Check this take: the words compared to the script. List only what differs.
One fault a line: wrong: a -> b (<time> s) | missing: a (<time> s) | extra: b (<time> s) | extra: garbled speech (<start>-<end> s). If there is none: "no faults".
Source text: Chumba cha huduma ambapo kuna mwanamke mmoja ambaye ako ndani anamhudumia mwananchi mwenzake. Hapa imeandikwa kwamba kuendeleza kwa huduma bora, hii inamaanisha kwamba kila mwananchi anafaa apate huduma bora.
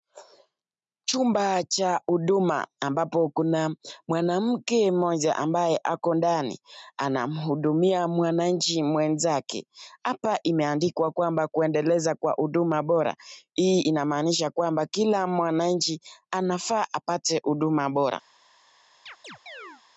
no faults